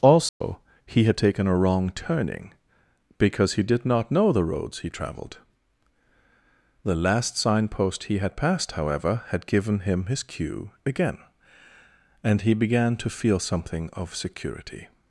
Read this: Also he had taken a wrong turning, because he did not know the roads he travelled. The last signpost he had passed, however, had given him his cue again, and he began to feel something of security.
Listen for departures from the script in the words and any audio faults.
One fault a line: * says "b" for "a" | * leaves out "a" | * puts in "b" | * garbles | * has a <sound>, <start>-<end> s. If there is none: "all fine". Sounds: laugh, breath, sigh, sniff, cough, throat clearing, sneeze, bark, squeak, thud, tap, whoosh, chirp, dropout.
* has a dropout, 0.3-0.4 s